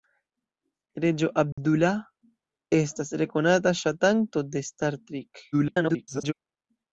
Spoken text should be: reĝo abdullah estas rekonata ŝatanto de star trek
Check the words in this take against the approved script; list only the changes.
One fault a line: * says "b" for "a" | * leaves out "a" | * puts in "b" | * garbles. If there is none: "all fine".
* garbles